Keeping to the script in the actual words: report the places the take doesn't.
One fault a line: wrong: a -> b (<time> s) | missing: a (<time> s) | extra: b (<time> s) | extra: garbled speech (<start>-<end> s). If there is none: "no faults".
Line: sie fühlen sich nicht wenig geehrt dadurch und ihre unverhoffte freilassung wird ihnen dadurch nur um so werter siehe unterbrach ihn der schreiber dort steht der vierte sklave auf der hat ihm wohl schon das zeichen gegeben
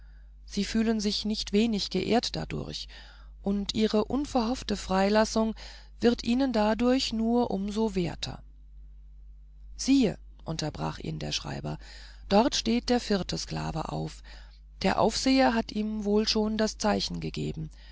extra: aufseher (15.0 s)